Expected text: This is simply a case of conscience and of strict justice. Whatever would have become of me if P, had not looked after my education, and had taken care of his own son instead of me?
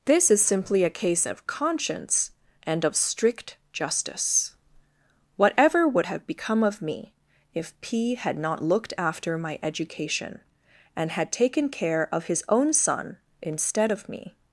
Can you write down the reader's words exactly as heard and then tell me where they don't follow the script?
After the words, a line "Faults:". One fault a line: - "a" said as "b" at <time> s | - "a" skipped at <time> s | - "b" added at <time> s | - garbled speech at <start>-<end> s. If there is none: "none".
This is simply a case of conscience and of strict justice. Whatever would have become of me if P, had not looked after my education, and had taken care of his own son instead of me?
Faults:
none